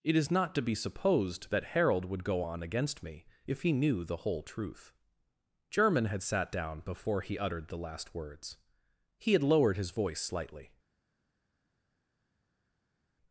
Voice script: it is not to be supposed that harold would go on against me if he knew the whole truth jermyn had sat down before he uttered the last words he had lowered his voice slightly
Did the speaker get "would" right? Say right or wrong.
right